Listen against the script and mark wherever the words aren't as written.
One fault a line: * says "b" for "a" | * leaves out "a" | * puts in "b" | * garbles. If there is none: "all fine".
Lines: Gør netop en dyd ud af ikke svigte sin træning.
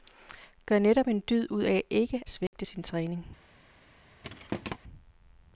all fine